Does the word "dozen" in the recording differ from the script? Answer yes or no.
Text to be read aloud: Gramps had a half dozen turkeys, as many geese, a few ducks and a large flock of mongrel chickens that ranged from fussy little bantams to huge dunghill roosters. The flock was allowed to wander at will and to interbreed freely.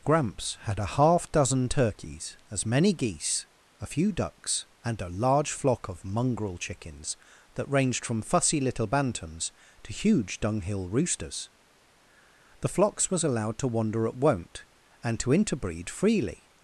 no